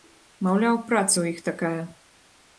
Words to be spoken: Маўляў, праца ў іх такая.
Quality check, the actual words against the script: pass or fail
pass